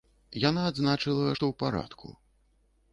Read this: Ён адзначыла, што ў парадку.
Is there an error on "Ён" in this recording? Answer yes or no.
yes